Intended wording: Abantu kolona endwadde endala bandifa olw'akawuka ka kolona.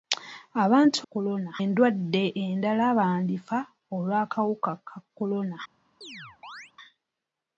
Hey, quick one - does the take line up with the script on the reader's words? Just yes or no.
yes